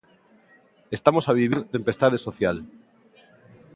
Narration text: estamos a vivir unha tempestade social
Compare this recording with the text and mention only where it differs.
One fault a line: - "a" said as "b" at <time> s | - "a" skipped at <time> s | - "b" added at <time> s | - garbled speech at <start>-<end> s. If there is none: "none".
- "unha" skipped at 1.6 s